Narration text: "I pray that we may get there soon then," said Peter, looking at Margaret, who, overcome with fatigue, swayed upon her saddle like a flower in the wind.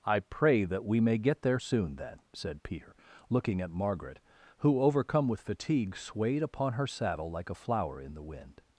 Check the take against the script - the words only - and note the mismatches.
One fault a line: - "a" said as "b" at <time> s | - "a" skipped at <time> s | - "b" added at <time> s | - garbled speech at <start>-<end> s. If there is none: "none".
none